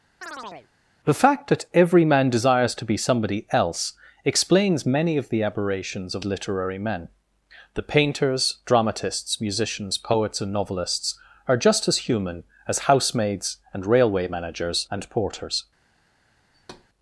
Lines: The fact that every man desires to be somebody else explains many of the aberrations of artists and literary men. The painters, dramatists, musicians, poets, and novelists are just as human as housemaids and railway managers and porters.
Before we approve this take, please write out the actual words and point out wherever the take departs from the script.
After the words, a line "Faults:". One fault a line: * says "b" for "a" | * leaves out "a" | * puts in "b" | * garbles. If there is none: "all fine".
The fact that every man desires to be somebody else explains many of the aberrations of literary men. The painters, dramatists, musicians, poets, and novelists are just as human as housemaids and railway managers and porters.
Faults:
* leaves out "artists and"